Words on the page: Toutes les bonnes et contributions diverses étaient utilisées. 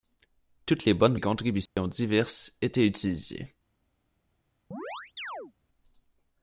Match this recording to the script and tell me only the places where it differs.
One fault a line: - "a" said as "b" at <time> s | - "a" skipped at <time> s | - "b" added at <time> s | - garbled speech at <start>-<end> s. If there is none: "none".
none